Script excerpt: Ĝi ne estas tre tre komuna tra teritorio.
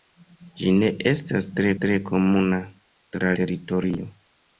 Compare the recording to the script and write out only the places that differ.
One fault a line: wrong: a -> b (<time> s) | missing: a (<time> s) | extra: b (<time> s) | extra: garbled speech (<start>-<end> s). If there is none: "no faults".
no faults